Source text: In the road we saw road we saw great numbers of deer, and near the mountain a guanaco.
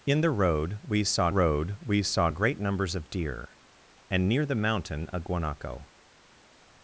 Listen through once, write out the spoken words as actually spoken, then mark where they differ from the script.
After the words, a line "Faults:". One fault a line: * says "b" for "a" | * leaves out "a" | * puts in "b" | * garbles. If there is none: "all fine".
In the road we saw road we saw great numbers of deer, and near the mountain a guanaco.
Faults:
all fine